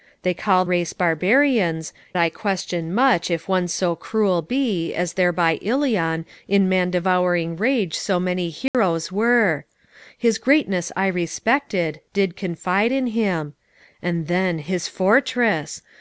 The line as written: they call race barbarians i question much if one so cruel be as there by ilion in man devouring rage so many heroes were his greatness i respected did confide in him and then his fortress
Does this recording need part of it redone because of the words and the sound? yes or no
yes